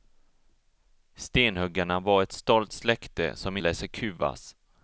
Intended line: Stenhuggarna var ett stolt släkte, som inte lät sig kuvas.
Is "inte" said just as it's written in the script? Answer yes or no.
no